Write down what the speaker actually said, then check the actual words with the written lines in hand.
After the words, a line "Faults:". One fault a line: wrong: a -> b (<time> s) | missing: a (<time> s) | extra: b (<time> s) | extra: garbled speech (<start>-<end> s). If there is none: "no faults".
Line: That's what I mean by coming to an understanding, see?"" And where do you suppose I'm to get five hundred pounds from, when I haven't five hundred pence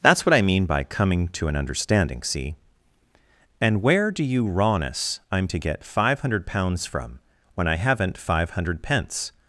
That's what I mean by coming to an understanding, see?"" And where do you rawness I'm to get five hundred pounds from, when I haven't five hundred pence
Faults:
wrong: suppose -> rawness (4.5 s)